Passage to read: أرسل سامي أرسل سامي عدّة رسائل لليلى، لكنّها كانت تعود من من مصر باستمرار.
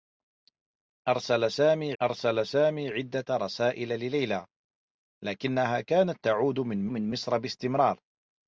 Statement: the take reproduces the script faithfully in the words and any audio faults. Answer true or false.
true